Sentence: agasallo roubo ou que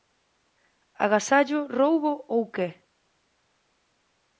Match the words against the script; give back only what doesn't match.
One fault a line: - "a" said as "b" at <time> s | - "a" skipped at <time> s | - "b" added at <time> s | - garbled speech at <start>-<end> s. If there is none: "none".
none